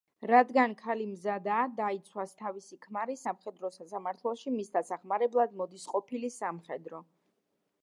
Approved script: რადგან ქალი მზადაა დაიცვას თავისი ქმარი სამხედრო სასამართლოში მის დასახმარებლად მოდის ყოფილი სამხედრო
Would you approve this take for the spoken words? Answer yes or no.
yes